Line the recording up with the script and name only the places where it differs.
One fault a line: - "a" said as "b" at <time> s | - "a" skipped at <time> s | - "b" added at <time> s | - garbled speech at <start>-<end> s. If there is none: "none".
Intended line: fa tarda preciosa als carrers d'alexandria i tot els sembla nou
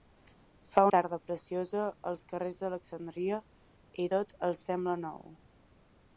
none